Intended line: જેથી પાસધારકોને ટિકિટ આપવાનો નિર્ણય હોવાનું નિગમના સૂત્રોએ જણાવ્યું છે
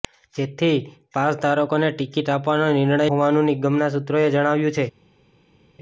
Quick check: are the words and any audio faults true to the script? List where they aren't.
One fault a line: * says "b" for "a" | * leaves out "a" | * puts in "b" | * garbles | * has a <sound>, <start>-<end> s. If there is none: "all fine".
all fine